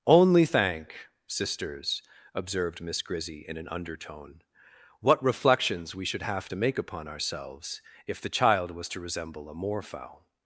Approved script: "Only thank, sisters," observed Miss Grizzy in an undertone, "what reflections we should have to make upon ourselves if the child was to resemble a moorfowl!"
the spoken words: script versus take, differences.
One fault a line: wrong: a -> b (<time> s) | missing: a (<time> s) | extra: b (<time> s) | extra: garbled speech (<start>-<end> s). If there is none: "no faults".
no faults